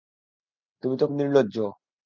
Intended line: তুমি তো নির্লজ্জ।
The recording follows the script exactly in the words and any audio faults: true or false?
true